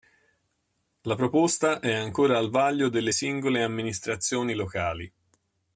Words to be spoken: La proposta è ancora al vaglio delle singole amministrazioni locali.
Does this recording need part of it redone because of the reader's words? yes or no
no